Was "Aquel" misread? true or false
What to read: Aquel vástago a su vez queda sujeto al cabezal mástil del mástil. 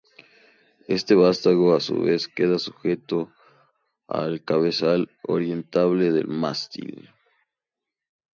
true